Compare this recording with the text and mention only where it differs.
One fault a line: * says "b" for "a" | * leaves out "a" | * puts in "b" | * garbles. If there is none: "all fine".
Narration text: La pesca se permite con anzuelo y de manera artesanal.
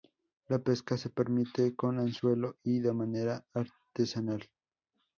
all fine